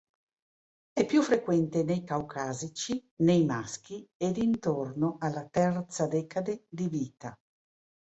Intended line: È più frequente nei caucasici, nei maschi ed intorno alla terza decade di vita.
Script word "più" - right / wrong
right